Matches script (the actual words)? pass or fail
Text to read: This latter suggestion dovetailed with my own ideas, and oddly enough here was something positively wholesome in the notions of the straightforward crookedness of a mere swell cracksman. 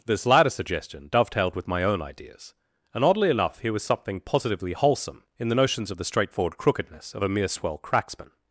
pass